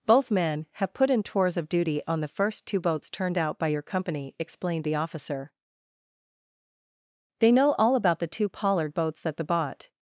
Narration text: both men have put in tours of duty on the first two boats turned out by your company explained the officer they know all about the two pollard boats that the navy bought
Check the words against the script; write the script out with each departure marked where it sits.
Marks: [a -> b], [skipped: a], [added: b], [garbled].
both men have put in tours of duty on the first two boats turned out by your company explained the officer they know all about the two pollard boats that the [skipped: navy] bought